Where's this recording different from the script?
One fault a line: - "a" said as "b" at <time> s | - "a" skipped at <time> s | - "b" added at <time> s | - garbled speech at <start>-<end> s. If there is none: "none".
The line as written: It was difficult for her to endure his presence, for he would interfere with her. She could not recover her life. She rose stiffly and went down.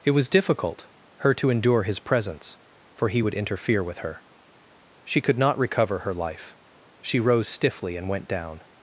- "for" skipped at 0.9 s